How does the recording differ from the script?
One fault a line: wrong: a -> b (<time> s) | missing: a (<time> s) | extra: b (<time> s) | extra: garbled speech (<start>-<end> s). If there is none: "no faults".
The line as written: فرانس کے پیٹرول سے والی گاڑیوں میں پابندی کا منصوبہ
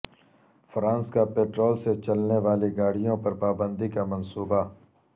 wrong: کے -> کا (1.1 s)
extra: چلنے (2.0 s)
wrong: میں -> پر (3.2 s)